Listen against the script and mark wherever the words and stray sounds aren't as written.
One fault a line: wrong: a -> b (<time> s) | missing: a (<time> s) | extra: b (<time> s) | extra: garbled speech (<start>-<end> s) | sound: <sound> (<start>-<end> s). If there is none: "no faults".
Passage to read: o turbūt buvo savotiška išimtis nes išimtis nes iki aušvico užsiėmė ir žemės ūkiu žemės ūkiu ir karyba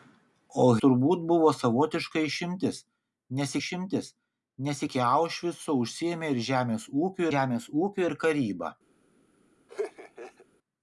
sound: laugh (9.7-10.5 s)